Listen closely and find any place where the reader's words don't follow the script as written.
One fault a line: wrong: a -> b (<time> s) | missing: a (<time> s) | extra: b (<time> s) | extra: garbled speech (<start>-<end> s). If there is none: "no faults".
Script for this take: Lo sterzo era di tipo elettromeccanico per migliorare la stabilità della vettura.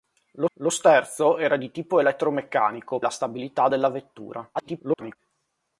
extra: lo (0.5 s)
missing: per migliorare (3.0 s)
extra: garbled speech (4.5-5.2 s)